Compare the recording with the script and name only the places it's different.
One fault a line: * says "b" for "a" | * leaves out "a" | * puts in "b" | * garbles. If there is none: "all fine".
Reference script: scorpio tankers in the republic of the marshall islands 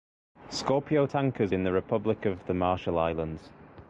all fine